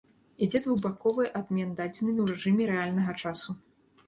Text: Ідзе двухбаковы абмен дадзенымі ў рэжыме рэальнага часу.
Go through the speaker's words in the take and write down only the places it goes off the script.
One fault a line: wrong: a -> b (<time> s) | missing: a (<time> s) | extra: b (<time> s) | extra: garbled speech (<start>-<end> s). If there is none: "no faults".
no faults